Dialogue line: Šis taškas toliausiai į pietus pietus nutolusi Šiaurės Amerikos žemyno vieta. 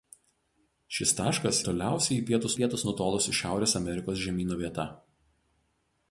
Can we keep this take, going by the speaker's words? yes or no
yes